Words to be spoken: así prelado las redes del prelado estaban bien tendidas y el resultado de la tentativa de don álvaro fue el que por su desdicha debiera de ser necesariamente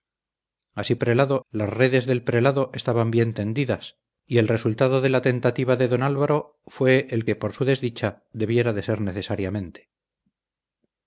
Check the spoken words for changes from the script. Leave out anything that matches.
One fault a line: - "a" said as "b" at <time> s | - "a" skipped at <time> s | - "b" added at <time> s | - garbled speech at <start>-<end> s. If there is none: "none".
none